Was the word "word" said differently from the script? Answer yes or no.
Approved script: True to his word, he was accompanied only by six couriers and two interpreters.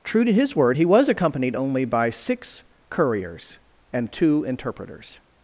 no